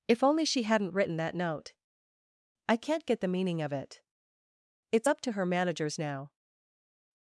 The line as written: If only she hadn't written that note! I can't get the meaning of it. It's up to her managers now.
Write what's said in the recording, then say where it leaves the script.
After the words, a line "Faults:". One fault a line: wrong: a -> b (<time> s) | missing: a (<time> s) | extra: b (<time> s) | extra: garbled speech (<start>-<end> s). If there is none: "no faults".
If only she hadn't written that note! I can't get the meaning of it. It's up to her managers now.
Faults:
no faults